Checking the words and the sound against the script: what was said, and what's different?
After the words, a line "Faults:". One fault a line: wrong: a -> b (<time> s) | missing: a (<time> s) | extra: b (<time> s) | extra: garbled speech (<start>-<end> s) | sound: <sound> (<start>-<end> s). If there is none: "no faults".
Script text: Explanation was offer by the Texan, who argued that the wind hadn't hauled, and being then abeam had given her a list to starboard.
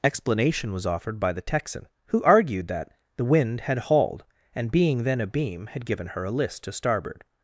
Explanation was offered by the Texan, who argued that the wind had hauled, and being then abeam had given her a list to starboard.
Faults:
wrong: offer -> offered (0.9 s)
wrong: hadn't -> had (3.6 s)